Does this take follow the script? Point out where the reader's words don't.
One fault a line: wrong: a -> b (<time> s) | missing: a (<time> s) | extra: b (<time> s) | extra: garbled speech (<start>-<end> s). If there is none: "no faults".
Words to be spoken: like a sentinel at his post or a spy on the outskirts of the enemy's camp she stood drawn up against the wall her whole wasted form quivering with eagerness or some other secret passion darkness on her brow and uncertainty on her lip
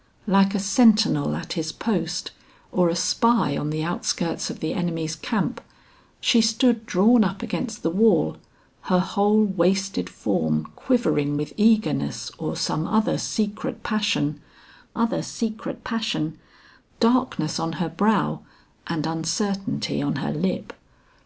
extra: other secret passion (14.9 s)